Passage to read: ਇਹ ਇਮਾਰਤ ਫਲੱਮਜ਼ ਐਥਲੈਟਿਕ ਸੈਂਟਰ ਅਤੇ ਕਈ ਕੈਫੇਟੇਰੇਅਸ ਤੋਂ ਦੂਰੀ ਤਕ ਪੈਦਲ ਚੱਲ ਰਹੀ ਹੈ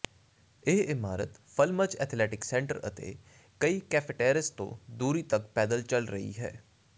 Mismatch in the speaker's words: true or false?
false